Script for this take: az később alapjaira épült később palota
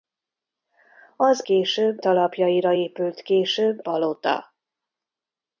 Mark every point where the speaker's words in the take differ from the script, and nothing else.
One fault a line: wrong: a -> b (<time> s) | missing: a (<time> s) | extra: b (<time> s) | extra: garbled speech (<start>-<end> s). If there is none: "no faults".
no faults